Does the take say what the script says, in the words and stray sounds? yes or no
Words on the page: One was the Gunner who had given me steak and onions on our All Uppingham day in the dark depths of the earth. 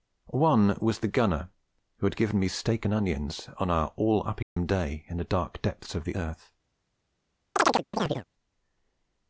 no